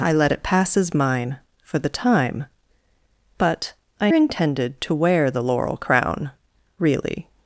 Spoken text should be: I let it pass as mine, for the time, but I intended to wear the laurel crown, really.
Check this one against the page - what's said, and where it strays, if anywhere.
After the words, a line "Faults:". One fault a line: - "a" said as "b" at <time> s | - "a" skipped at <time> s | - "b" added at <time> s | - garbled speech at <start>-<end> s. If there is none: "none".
I let it pass as mine, for the time, but I intended to wear the laurel crown, really.
Faults:
none